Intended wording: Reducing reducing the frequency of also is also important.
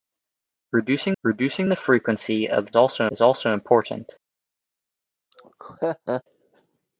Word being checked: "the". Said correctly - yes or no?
yes